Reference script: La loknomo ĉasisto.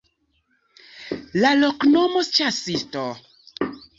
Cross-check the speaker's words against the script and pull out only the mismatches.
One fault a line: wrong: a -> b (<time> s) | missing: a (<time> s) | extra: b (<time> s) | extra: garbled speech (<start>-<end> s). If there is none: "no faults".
no faults